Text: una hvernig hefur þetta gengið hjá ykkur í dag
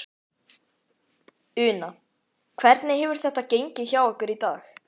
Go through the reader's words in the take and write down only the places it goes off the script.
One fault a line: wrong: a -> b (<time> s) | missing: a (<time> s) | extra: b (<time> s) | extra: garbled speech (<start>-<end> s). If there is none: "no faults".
no faults